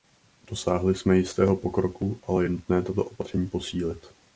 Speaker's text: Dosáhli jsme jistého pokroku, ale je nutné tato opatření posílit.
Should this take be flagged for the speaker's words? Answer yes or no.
no